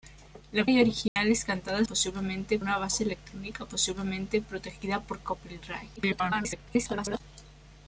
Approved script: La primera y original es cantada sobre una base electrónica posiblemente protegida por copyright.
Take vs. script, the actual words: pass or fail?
fail